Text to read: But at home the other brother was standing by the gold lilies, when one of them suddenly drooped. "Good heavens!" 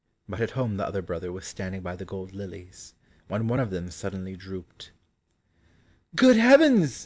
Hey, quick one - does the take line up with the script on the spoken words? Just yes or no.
yes